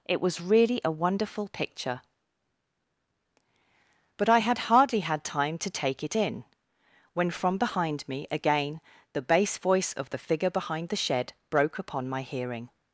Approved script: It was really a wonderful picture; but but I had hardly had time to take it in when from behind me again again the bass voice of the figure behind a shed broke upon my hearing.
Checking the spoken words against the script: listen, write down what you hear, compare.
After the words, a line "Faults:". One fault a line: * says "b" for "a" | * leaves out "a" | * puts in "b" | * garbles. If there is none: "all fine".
It was really a wonderful picture; but I had hardly had time to take it in when from behind me again the bass voice of the figure behind the shed broke upon my hearing.
Faults:
* leaves out "but"
* leaves out "again"
* says "the" for "a"